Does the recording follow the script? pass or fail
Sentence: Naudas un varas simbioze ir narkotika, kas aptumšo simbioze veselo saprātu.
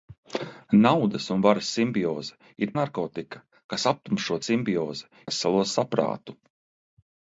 pass